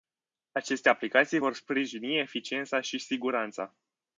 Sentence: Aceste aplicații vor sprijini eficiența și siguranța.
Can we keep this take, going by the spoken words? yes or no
yes